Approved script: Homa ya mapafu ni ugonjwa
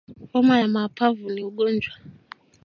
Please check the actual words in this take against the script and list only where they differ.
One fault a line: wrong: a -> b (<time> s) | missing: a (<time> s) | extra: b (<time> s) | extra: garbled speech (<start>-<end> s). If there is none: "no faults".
no faults